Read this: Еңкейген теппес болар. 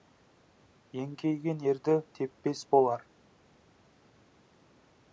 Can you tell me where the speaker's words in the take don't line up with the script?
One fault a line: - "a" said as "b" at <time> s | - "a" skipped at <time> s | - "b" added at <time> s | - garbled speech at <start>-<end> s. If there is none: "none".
- "ерді" added at 1.7 s